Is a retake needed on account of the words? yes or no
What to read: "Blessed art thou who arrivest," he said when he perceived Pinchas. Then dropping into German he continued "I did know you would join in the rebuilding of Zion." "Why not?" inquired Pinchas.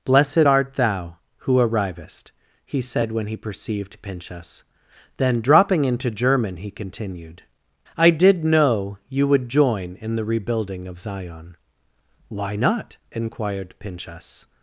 no